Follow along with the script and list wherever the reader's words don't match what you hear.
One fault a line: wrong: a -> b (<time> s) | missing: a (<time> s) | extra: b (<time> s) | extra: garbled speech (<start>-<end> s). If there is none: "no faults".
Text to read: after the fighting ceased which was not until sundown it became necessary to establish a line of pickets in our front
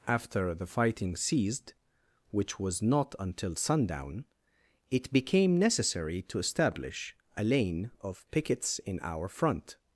wrong: line -> lane (7.4 s)